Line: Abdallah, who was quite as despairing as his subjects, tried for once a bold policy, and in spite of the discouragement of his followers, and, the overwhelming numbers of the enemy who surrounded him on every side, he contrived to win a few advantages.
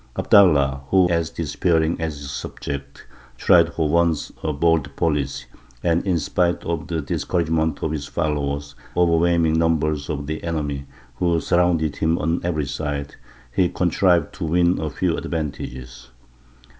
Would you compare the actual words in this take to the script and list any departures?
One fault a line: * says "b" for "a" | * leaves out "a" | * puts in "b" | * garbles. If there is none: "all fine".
* leaves out "was quite"
* leaves out "and the"